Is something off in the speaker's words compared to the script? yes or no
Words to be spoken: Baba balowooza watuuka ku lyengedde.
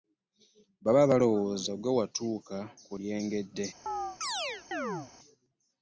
yes